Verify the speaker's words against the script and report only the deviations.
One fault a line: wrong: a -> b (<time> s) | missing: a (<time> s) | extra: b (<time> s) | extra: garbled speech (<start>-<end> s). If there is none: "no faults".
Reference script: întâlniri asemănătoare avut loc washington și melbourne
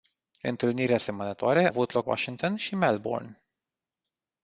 no faults